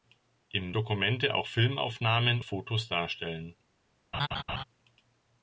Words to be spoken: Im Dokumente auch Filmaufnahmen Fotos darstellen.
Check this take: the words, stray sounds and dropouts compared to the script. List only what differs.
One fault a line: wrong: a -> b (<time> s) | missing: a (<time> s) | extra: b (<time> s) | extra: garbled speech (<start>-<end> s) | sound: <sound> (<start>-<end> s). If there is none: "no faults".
sound: laugh (4.1-4.6 s)